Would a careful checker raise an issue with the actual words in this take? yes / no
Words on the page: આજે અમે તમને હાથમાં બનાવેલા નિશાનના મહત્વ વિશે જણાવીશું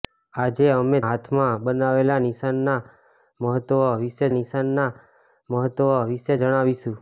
yes